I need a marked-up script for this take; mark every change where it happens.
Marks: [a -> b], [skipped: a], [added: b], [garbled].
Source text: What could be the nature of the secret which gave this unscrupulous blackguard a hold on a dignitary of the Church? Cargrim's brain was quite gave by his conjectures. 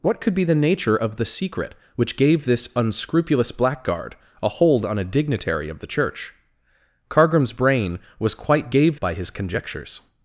What could be the nature of the secret which gave this unscrupulous blackguard a hold on a dignitary of the Church? Cargrim's brain was quite gave by his conjectures.